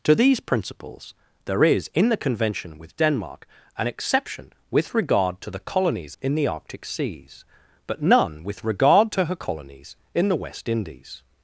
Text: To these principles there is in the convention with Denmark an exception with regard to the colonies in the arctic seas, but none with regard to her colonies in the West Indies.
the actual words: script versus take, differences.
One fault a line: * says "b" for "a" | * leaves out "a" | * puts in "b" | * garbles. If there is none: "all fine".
all fine